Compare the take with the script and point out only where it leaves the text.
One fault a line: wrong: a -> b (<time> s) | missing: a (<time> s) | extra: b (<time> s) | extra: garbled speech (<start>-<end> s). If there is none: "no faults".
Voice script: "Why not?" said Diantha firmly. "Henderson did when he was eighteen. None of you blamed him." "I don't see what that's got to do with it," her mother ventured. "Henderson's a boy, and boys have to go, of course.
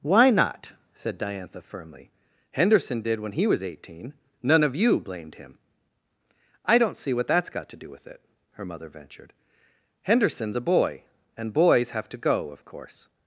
no faults